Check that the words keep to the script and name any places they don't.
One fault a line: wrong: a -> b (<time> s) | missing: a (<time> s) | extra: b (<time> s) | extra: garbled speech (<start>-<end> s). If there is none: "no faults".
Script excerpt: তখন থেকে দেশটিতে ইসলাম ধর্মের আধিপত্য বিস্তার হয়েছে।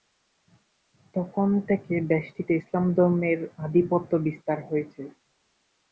no faults